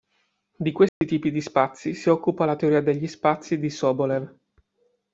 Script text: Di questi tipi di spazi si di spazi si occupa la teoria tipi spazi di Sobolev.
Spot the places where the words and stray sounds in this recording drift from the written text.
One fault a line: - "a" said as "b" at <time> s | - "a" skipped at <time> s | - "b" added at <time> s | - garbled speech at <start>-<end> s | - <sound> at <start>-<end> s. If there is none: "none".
- dropout at 0.9-1.0 s
- "di spazi si" skipped at 2.1 s
- "tipi" said as "degli" at 2.8 s